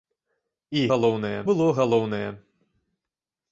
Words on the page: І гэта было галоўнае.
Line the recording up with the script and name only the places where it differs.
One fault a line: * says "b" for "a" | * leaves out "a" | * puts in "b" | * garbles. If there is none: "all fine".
* says "галоўнае" for "гэта"